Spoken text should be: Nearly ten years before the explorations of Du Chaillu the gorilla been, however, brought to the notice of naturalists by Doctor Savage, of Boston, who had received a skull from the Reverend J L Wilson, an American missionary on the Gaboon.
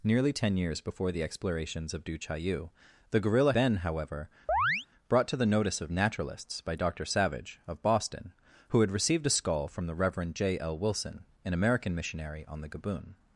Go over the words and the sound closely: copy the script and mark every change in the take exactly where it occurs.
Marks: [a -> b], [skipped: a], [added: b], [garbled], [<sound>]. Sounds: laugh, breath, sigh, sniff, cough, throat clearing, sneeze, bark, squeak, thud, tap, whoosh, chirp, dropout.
Nearly ten years before the explorations of Du Chaillu the gorilla been, however, [chirp] brought to the notice of naturalists by Doctor Savage, of Boston, who had received a skull from the Reverend J L Wilson, an American missionary on the Gaboon.